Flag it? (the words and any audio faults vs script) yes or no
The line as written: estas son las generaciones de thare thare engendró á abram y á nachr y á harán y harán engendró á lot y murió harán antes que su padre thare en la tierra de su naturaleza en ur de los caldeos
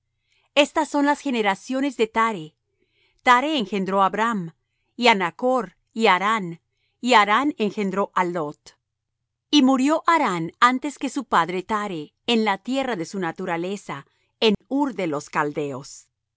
yes